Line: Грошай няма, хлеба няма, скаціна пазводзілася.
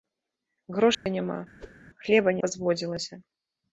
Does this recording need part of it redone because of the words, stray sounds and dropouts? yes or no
yes